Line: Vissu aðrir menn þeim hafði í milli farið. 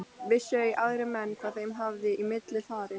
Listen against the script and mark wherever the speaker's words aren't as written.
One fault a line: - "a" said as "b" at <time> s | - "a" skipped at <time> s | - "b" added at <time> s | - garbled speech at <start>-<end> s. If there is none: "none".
- "ei" added at 0.6 s
- "hvað" added at 1.4 s